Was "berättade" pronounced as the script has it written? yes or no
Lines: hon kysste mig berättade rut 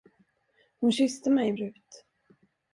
no